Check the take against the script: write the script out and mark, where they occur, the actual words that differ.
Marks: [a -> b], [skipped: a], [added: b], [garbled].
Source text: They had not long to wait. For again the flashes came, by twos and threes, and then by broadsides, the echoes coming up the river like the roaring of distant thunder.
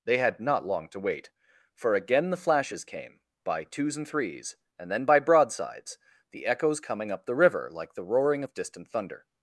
They had not long to wait. For again the flashes came, by twos and threes, and then by broadsides, the echoes coming up the river like the roaring of distant thunder.